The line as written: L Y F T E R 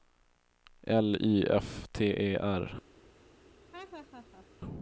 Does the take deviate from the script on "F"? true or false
false